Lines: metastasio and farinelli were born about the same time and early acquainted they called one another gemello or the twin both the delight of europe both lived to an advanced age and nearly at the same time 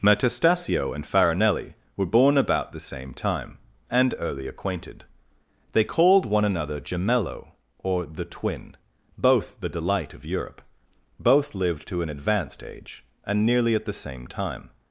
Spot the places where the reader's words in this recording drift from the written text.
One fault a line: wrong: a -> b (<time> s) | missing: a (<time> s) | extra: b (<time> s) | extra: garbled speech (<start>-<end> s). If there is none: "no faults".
no faults